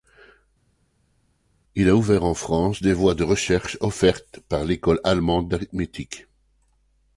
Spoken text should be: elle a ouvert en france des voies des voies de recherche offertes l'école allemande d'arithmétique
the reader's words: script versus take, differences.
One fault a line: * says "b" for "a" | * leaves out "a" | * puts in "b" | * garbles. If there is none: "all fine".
* says "il" for "elle"
* leaves out "des voies"
* puts in "par"